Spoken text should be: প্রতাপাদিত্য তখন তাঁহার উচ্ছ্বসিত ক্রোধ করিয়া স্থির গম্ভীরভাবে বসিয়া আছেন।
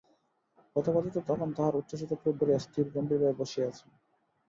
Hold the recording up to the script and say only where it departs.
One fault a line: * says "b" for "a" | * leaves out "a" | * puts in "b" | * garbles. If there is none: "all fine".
all fine